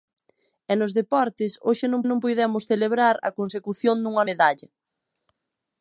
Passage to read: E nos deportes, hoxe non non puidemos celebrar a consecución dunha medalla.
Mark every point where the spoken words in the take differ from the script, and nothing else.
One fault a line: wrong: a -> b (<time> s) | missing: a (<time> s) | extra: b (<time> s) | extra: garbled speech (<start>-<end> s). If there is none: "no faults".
no faults